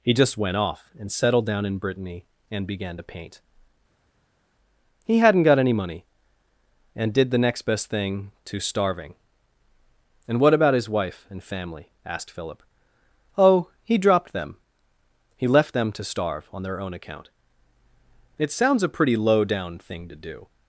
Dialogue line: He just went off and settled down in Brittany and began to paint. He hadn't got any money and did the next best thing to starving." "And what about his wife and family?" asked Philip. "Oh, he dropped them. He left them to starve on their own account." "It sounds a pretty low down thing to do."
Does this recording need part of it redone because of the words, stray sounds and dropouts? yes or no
no